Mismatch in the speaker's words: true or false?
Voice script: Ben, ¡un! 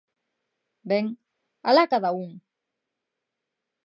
true